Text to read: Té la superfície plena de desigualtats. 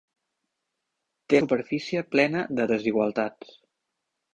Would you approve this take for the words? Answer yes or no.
no